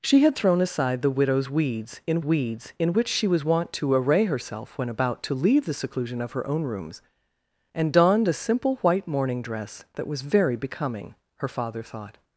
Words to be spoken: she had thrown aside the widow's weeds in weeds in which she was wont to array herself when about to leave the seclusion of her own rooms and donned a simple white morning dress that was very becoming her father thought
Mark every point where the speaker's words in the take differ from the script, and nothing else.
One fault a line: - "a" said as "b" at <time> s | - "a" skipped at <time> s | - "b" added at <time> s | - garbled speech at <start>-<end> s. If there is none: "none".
none